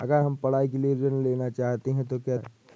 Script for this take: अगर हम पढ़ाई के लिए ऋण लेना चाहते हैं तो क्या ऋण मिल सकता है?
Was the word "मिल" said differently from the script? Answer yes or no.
yes